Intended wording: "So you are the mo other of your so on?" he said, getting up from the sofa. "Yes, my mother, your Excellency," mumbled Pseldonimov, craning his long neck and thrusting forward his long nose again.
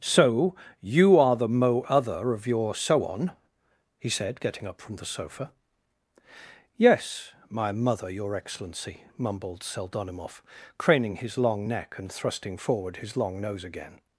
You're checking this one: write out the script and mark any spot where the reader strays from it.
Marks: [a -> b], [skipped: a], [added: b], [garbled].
"So you are the mo other of your so on?" he said, getting up from the sofa. "Yes, my mother, your Excellency," mumbled Pseldonimov, craning his long neck and thrusting forward his long nose again.